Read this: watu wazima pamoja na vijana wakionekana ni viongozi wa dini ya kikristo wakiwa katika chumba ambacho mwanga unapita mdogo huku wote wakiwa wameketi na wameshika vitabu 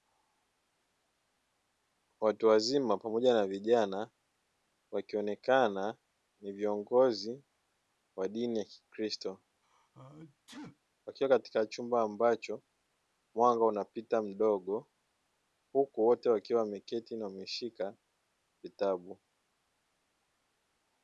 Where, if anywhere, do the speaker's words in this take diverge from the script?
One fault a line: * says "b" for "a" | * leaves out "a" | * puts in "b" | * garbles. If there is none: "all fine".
all fine